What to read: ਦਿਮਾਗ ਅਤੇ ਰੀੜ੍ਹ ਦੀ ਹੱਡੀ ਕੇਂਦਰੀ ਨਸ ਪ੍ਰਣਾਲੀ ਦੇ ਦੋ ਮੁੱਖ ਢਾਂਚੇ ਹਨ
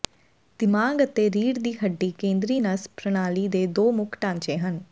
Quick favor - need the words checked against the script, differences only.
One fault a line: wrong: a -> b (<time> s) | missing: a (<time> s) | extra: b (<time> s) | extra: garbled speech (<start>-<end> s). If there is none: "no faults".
no faults